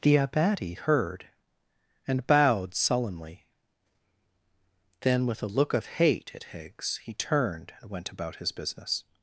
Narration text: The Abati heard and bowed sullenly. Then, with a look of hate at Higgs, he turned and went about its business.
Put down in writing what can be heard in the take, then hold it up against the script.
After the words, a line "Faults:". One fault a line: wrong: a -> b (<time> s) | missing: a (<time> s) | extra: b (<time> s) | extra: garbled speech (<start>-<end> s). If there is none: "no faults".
The Abati heard and bowed sullenly. Then, with a look of hate at Higgs, he turned and went about his business.
Faults:
wrong: its -> his (8.4 s)